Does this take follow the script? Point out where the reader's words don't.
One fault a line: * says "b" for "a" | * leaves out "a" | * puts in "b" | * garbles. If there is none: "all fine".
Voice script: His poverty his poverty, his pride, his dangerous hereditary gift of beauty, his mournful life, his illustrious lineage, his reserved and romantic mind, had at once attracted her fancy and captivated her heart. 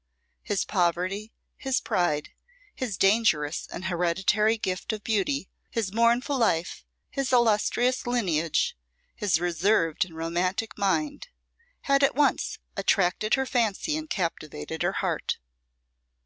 * leaves out "poverty his"
* puts in "and"